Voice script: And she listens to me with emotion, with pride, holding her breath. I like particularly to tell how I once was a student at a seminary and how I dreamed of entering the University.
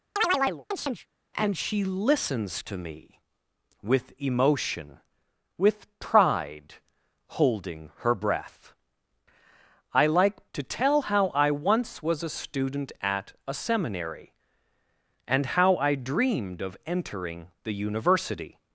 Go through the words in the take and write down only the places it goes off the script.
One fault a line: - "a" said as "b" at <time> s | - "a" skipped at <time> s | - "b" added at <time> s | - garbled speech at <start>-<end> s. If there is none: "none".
- "particularly" skipped at 10.5 s